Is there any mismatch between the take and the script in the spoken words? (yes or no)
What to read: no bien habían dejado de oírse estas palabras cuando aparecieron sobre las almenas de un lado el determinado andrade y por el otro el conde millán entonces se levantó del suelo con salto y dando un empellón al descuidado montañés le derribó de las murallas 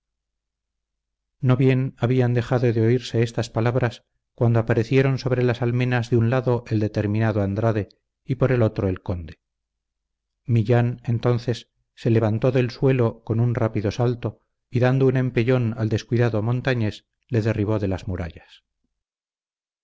yes